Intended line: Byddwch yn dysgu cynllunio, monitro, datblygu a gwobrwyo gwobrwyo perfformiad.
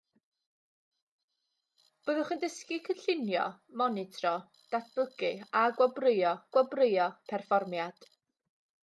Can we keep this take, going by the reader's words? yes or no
yes